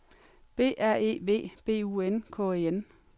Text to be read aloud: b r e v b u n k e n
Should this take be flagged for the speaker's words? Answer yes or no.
no